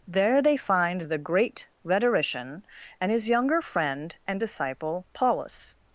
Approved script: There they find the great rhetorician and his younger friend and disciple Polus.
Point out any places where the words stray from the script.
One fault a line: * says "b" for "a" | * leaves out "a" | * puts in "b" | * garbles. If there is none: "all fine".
all fine